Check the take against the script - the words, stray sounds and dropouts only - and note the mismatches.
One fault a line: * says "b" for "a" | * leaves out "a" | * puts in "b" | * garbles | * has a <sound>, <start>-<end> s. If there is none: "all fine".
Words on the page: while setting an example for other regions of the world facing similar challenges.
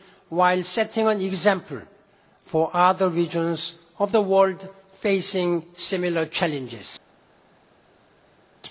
all fine